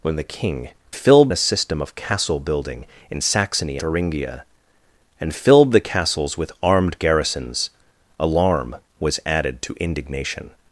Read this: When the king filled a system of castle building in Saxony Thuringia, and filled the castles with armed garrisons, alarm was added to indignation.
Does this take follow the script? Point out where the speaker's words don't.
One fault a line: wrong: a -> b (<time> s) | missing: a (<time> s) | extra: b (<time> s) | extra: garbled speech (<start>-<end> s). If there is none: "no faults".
no faults